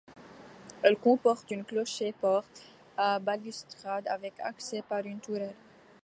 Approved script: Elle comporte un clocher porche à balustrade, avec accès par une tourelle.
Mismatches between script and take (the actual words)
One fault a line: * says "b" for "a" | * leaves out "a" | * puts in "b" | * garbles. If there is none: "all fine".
all fine